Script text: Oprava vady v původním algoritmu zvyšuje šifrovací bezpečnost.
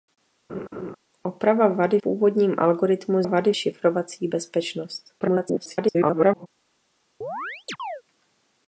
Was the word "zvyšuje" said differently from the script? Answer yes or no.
yes